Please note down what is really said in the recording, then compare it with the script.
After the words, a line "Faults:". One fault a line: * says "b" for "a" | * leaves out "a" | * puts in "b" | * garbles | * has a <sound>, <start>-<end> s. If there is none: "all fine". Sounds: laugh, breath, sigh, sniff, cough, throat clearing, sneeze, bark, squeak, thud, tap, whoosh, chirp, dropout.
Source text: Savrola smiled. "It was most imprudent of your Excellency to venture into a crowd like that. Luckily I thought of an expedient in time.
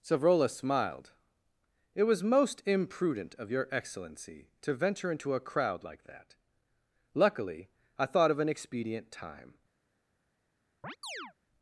Savrola smiled. "It was most imprudent of your Excellency to venture into a crowd like that. Luckily I thought of an expedient time.
Faults:
* leaves out "in"
* has a chirp, 10.8-11.3 s